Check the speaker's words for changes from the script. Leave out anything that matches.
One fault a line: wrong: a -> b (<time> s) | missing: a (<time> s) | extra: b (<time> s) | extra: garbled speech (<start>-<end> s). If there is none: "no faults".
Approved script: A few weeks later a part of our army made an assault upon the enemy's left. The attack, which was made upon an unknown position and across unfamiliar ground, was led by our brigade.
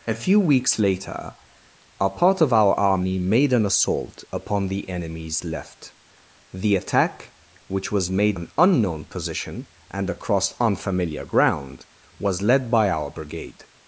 missing: upon (8.4 s)